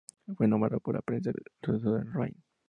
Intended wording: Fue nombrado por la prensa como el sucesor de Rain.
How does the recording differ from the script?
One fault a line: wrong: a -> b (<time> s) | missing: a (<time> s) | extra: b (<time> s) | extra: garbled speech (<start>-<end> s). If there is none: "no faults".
missing: como (1.3 s)